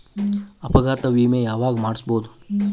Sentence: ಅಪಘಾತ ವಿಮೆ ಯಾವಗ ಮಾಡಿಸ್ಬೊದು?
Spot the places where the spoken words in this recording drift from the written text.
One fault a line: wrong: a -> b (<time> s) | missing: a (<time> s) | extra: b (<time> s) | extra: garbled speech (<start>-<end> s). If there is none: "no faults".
no faults